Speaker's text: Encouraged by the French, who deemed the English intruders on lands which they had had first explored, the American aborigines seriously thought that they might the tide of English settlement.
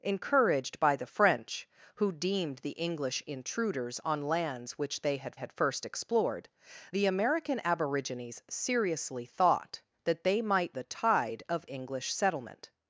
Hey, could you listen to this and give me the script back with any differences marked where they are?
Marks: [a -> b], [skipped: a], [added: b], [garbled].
Encouraged by the French, who deemed the English intruders on lands which they had had first explored, the American aborigines seriously thought that they might the tide of English settlement.